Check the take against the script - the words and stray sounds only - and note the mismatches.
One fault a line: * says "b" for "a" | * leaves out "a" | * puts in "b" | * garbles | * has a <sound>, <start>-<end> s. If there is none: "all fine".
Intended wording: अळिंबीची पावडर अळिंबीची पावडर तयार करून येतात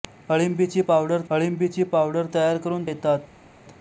all fine